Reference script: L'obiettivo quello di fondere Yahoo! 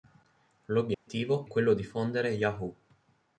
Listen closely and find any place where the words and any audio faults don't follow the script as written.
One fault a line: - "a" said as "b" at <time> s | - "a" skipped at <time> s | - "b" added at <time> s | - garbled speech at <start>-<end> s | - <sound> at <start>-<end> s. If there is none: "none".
- dropout at 0.9-1.1 s